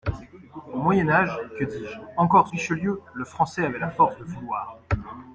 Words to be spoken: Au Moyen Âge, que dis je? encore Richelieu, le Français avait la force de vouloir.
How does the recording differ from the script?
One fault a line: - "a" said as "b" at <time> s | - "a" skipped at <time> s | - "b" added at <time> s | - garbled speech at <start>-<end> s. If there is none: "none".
none